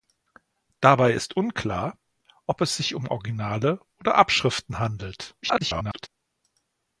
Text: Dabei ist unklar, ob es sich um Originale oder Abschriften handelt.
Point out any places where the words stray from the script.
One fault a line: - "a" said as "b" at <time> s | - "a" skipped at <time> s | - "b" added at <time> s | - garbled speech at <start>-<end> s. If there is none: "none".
- garbled speech at 5.4-6.1 s